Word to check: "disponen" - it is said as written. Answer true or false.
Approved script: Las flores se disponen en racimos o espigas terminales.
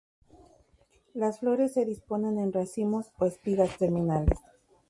true